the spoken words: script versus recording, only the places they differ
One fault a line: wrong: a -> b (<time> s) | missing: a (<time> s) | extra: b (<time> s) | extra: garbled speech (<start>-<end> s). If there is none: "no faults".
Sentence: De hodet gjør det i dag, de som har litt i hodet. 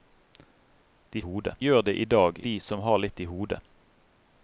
no faults